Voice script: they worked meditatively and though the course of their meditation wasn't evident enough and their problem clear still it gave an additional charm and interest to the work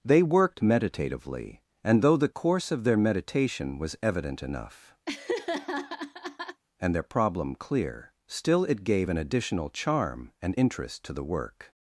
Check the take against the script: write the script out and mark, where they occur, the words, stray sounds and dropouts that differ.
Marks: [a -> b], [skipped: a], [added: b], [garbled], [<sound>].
they worked meditatively and though the course of their meditation [wasn't -> was] evident enough [laugh] and their problem clear still it gave an additional charm and interest to the work